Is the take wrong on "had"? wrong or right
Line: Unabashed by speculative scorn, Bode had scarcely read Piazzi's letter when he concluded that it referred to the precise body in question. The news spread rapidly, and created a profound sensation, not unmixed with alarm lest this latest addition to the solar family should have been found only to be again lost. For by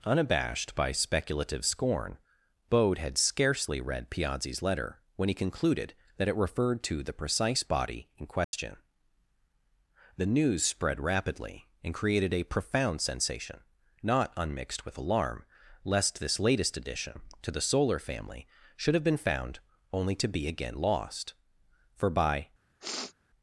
right